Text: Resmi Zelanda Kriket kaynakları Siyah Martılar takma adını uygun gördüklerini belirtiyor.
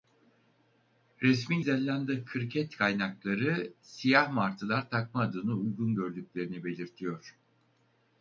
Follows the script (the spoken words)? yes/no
yes